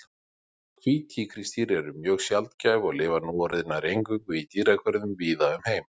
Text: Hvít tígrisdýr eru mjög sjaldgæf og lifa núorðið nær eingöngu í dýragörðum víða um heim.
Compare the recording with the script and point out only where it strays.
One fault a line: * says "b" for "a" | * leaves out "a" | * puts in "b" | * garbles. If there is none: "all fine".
all fine